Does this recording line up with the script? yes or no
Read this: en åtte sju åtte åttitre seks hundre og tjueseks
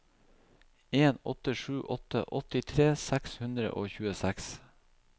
yes